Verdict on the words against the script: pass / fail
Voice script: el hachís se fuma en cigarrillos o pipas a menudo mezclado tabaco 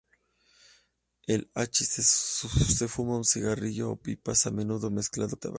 pass